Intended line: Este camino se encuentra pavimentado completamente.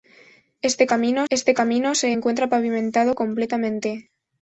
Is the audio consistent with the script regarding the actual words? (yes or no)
no